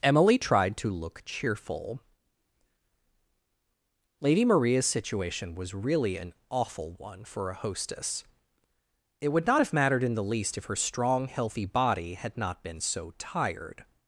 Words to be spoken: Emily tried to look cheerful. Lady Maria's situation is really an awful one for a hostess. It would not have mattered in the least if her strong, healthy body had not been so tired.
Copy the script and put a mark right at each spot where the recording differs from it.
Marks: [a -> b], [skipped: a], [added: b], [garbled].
Emily tried to look cheerful. Lady Maria's situation [is -> was] really an awful one for a hostess. It would not have mattered in the least if her strong, healthy body had not been so tired.